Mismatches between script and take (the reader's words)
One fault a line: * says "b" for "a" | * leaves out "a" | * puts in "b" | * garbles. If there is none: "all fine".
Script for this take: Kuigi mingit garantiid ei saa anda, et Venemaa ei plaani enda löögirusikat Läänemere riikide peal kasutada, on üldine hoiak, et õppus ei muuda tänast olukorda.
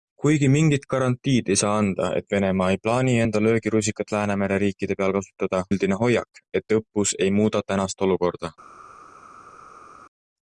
* leaves out "on"